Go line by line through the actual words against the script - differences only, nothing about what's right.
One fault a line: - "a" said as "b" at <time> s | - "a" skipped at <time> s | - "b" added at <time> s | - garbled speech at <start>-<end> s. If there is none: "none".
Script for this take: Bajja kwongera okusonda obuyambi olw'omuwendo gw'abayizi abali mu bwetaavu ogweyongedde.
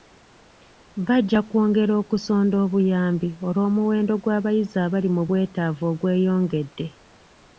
none